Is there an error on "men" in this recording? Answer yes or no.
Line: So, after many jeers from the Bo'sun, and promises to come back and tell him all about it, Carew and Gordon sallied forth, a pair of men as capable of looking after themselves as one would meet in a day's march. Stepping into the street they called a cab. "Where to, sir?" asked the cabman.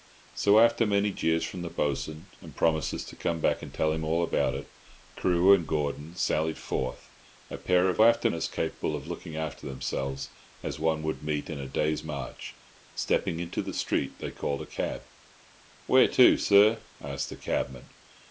yes